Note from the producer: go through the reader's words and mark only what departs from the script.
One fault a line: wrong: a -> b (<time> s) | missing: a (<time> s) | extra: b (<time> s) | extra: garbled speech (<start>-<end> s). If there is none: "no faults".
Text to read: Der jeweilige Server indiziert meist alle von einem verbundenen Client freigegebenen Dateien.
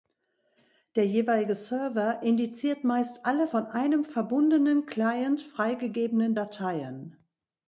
no faults